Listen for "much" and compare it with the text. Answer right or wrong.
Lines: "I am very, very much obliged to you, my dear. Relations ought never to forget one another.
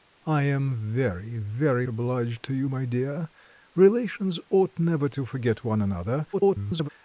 wrong